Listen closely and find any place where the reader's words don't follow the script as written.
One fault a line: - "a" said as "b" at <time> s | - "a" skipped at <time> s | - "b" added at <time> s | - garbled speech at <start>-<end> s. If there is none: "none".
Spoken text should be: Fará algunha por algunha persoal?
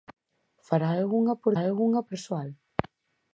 none